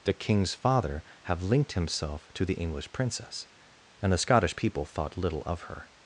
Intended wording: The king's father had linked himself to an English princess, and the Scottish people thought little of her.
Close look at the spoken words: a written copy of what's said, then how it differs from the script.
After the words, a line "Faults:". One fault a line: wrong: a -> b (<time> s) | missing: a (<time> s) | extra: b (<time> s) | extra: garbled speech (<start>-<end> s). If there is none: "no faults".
The king's father have linked himself to the English princess, and the Scottish people thought little of her.
Faults:
wrong: had -> have (1.2 s)
wrong: an -> the (2.5 s)